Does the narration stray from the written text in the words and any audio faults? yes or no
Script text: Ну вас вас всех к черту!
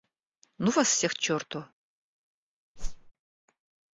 yes